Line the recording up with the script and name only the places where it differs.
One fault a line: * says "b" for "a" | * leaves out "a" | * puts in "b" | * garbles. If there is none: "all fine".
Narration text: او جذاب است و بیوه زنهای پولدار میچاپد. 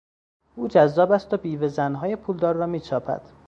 * puts in "را"